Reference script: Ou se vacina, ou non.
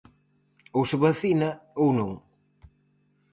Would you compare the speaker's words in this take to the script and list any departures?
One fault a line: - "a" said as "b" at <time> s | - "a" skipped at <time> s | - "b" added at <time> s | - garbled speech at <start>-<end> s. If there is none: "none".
none